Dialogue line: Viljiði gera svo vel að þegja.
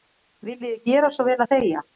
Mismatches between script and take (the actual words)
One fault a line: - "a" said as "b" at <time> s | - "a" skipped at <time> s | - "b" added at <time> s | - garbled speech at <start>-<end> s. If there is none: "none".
none